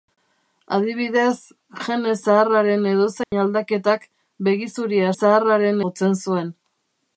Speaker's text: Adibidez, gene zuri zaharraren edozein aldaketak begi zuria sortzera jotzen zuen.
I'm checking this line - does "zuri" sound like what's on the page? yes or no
no